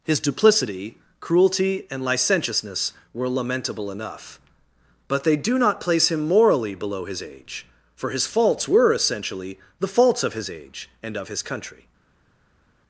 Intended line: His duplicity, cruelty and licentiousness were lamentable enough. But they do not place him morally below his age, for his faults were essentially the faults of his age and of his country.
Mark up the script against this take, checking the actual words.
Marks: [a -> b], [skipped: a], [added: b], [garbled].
His duplicity, cruelty and licentiousness were lamentable enough. But they do not place him morally below his age, for his faults were essentially the faults of his age and of his country.